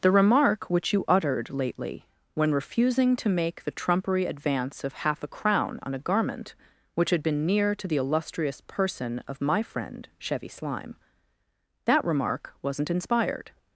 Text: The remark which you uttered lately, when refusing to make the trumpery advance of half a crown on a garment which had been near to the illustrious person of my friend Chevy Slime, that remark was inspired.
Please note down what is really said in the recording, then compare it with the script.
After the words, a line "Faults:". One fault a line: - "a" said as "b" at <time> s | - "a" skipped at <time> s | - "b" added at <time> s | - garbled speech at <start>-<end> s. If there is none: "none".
The remark which you uttered lately, when refusing to make the trumpery advance of half a crown on a garment which had been near to the illustrious person of my friend Chevy Slime, that remark wasn't inspired.
Faults:
- "was" said as "wasn't" at 12.6 s